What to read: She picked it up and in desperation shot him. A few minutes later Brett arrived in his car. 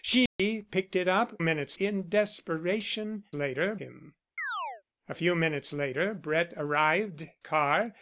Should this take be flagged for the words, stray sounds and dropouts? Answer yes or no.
yes